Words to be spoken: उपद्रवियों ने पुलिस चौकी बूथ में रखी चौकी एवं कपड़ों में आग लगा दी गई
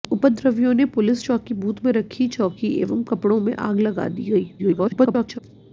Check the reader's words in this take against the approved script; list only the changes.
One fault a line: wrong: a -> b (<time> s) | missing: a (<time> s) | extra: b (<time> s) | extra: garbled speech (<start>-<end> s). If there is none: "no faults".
extra: garbled speech (4.6-5.4 s)